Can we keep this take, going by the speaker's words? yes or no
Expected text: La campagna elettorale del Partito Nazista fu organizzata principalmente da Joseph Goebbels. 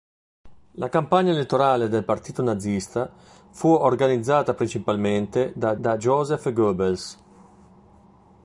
no